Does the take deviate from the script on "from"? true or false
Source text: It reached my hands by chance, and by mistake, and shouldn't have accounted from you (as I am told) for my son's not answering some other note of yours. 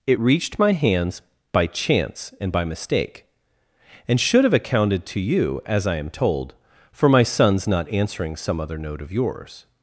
true